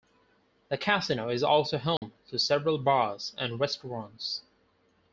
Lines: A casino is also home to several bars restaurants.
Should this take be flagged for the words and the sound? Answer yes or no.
yes